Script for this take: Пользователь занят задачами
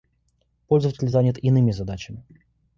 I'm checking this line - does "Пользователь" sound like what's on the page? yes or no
yes